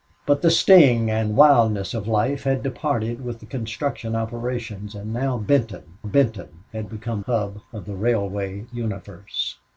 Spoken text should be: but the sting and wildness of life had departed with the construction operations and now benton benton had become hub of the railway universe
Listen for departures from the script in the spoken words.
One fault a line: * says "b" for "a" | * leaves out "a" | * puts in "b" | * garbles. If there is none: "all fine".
all fine